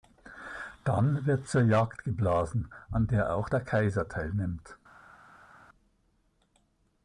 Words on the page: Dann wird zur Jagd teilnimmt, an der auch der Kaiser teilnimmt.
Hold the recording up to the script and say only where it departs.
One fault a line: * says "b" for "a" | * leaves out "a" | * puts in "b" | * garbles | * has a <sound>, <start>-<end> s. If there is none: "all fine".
* says "geblasen" for "teilnimmt"